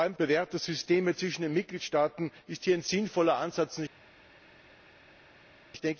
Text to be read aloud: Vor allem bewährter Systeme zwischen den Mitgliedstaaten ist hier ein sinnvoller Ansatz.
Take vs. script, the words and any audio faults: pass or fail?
pass